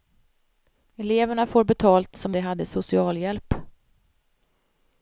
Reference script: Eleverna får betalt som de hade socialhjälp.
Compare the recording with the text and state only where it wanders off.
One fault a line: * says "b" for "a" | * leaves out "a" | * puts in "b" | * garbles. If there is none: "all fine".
all fine